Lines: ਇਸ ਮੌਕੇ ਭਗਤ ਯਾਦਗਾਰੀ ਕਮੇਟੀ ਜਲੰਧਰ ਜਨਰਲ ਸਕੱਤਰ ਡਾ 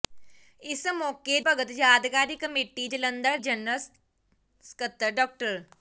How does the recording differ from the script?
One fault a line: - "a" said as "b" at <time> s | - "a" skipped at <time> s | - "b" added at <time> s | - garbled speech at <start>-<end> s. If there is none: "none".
none